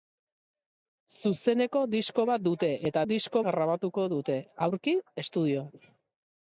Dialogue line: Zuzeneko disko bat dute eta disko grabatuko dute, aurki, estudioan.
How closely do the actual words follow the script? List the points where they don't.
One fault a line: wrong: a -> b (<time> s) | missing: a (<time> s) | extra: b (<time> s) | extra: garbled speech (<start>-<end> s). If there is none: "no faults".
no faults